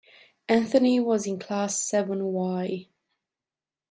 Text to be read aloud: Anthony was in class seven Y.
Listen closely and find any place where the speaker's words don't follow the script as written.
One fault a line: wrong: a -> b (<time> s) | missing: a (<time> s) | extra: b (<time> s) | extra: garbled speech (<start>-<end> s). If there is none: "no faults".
no faults